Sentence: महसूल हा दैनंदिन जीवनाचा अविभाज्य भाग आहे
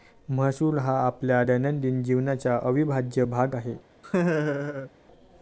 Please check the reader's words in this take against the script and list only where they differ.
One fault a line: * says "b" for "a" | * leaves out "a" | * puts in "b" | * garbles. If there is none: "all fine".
* puts in "आपल्या"